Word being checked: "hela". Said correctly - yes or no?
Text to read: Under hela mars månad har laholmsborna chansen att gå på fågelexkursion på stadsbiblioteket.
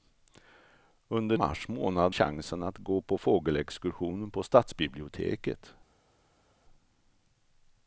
no